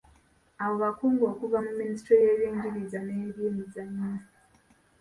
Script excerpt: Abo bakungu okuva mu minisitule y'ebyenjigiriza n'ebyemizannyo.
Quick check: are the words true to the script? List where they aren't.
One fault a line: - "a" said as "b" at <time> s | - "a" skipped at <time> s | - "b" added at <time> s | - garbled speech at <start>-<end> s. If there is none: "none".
none